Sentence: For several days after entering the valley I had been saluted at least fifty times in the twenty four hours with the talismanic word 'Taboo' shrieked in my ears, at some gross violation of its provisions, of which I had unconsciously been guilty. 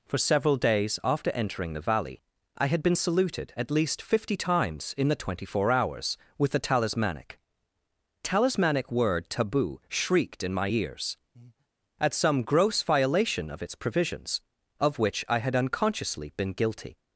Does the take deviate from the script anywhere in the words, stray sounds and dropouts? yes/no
yes